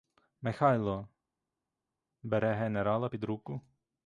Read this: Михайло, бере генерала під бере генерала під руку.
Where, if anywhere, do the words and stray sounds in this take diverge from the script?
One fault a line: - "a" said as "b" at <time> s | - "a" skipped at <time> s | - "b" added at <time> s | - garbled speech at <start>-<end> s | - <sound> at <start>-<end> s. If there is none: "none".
- "бере генерала під" skipped at 3.2 s